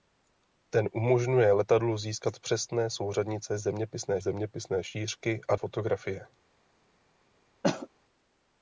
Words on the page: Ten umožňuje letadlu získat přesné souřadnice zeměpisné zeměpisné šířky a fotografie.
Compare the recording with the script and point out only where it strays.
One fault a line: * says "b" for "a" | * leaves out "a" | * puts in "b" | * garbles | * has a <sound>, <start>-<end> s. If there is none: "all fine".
* has a cough, 7.6-7.9 s